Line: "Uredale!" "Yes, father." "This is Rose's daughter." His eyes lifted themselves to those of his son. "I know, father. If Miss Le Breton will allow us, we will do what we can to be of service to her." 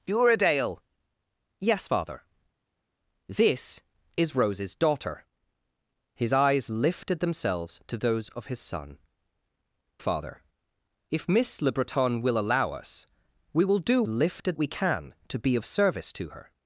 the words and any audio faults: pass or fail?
fail